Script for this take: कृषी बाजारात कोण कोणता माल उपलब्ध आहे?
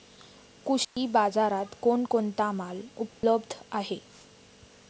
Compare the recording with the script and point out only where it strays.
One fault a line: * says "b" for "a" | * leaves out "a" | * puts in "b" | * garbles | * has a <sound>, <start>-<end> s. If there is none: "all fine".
* has a dropout, 0.8-1.0 s
* has a dropout, 3.1-3.2 s